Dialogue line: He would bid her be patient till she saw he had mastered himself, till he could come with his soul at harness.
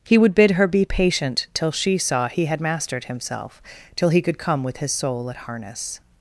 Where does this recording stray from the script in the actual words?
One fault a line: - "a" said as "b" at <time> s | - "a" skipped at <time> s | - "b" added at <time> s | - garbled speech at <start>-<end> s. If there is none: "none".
none